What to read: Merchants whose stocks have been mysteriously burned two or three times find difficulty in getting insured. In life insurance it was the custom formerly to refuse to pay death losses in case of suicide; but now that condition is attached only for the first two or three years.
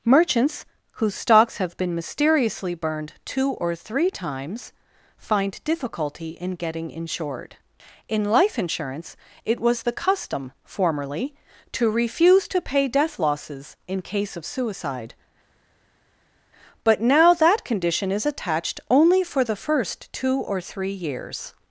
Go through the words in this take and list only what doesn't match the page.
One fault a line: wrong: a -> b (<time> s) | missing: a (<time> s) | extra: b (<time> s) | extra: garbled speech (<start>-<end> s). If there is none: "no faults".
no faults